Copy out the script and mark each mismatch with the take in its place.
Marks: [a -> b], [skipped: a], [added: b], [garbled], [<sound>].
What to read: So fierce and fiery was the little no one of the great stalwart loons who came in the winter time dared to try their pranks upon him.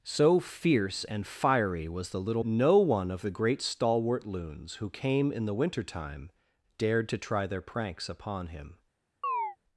So fierce and fiery was the little no one of the great stalwart loons who came in the winter time dared to try their pranks upon him. [chirp]